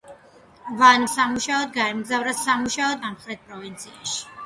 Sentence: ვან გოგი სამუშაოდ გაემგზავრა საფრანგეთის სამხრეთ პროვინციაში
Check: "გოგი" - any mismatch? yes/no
yes